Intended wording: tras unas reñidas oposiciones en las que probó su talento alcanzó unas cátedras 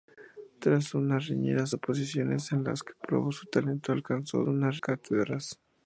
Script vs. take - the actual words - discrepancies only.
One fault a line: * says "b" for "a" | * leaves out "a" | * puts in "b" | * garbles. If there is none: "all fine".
all fine